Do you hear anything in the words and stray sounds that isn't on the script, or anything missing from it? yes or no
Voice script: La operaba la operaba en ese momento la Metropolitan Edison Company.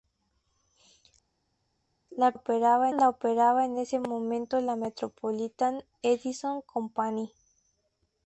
no